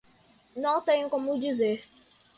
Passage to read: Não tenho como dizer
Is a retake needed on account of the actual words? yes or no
no